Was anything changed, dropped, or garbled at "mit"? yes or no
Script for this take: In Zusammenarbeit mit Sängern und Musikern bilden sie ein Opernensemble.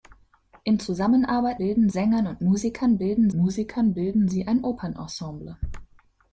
yes